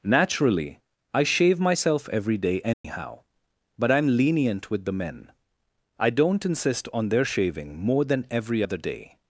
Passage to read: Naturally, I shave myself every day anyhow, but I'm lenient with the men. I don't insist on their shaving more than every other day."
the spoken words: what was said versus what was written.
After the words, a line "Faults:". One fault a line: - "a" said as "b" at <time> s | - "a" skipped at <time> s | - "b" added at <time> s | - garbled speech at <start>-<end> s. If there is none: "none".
Naturally, I shave myself every day anyhow, but I'm lenient with the men. I don't insist on their shaving more than every other day."
Faults:
none